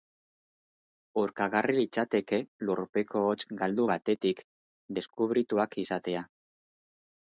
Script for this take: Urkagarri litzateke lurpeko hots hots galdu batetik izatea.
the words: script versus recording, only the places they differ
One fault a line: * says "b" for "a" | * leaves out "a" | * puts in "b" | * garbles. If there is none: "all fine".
* leaves out "hots"
* puts in "deskubrituak"